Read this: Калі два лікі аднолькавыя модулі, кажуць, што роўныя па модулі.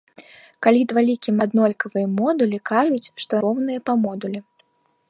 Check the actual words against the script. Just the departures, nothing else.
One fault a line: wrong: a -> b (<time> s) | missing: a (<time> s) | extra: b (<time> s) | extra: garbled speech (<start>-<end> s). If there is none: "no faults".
no faults